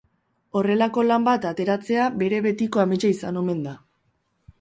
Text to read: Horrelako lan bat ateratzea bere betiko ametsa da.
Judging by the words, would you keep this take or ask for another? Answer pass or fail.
fail